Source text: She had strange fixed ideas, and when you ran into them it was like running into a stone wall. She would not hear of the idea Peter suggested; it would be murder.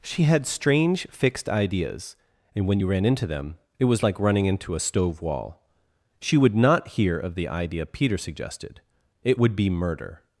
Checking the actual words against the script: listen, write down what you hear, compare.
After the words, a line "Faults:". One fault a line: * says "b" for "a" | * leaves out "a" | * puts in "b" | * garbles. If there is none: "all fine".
She had strange fixed ideas, and when you ran into them it was like running into a stove wall. She would not hear of the idea Peter suggested; it would be murder.
Faults:
* says "stove" for "stone"